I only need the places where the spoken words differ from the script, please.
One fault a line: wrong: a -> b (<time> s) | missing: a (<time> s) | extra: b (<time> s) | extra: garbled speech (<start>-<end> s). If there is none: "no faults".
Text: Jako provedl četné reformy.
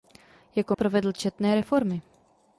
no faults